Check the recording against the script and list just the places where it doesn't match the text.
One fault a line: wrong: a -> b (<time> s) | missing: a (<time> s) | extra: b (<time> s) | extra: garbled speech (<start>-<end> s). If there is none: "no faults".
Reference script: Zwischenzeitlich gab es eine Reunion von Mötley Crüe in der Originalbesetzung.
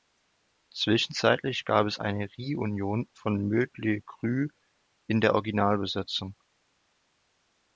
no faults